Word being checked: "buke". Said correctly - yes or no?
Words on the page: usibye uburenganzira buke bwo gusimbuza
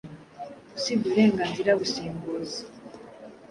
no